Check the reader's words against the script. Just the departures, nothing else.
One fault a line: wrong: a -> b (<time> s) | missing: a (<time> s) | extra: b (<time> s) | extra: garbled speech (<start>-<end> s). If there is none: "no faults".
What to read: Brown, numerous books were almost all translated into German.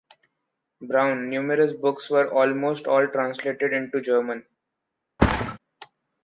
no faults